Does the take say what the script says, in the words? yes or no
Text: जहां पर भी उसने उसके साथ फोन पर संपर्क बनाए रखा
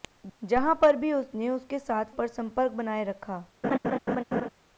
no